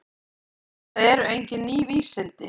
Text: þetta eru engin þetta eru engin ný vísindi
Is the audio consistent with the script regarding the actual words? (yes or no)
no